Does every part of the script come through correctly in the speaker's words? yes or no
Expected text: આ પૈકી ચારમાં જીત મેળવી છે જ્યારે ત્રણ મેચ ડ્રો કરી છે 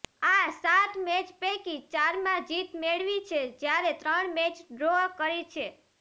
no